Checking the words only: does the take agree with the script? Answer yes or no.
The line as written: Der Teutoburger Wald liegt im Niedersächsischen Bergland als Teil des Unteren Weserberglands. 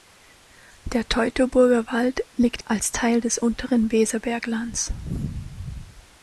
no